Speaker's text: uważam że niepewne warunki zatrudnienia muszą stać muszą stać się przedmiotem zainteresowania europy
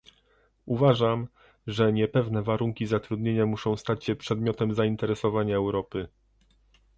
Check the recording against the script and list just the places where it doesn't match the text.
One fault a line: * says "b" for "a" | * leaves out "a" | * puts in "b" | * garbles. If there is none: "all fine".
* leaves out "muszą stać"